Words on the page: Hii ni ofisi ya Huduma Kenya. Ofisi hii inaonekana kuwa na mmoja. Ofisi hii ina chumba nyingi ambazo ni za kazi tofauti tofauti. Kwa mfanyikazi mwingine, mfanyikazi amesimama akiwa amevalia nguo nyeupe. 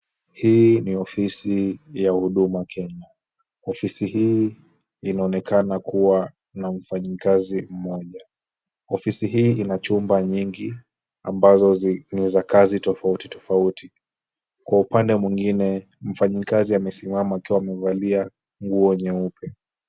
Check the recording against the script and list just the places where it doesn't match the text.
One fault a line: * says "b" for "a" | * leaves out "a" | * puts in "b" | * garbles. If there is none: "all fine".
* puts in "mfanyikazi"
* says "upande" for "mfanyikazi"